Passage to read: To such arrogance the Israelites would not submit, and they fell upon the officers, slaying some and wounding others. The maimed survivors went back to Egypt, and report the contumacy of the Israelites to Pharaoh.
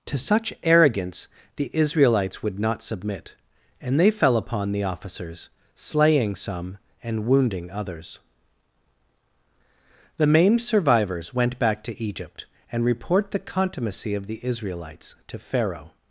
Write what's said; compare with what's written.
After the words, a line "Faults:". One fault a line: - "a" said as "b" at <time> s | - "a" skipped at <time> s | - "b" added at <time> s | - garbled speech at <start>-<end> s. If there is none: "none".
To such arrogance the Israelites would not submit, and they fell upon the officers, slaying some and wounding others. The maimed survivors went back to Egypt, and report the contumacy of the Israelites to Pharaoh.
Faults:
none